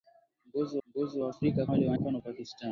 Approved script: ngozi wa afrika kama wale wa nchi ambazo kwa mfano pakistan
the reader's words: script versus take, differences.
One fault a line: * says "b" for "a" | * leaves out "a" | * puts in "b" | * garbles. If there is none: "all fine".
* puts in "ngozi"
* leaves out "kama"
* leaves out "nchi ambazo kwa"